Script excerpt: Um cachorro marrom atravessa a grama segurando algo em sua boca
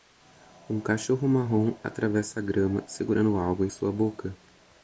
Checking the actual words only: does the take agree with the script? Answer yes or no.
yes